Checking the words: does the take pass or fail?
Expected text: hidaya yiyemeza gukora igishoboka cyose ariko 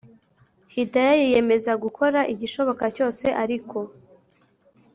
pass